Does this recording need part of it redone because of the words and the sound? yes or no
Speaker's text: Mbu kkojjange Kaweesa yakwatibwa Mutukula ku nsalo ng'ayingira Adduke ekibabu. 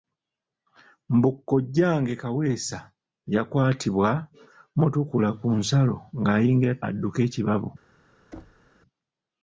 yes